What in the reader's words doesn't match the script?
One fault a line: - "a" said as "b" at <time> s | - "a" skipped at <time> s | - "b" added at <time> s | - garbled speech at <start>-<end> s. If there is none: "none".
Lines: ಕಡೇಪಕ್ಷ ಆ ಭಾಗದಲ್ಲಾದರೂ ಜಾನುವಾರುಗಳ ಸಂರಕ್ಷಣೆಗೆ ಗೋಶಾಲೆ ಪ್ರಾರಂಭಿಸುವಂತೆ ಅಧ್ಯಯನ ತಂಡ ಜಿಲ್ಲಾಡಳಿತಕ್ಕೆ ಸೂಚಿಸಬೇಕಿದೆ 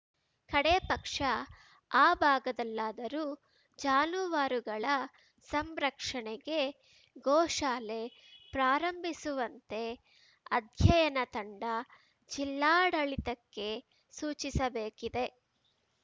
none